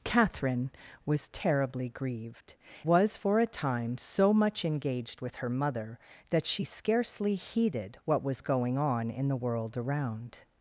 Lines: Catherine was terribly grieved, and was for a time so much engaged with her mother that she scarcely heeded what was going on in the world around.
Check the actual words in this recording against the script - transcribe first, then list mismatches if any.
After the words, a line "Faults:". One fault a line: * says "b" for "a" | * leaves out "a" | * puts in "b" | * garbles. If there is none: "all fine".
Catherine was terribly grieved, was for a time so much engaged with her mother that she scarcely heeded what was going on in the world around.
Faults:
* leaves out "and"